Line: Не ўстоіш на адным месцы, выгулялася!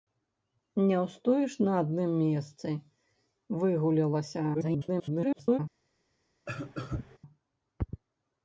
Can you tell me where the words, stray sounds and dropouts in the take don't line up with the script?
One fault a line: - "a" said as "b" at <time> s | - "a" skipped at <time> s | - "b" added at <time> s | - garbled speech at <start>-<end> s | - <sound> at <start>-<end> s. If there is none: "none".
- garbled speech at 4.5-5.6 s
- cough at 6.5-7.2 s